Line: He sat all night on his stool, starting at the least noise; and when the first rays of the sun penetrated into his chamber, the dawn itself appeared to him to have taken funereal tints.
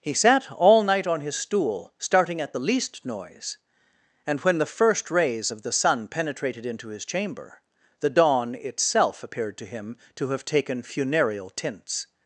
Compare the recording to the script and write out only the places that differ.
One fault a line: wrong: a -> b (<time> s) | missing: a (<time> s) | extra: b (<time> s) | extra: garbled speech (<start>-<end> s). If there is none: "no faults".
no faults